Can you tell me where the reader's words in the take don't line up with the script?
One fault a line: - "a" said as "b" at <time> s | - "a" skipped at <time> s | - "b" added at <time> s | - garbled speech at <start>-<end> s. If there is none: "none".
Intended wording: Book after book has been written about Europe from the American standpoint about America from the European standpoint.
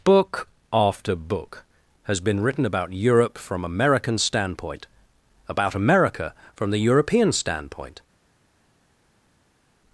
- "the" skipped at 3.6 s